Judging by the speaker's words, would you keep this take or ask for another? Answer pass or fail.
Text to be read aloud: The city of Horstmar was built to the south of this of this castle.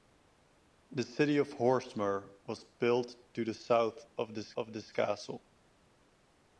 pass